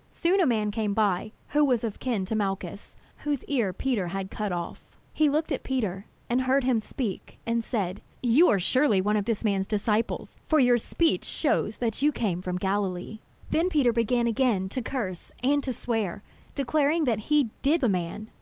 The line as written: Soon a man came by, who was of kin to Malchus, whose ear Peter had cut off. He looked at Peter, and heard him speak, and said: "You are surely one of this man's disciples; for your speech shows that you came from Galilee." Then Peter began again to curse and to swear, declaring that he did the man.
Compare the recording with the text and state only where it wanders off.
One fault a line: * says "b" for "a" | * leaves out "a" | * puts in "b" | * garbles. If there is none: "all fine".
all fine